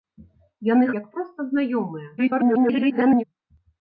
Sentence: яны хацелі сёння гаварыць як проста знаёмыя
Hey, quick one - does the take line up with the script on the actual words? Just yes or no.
no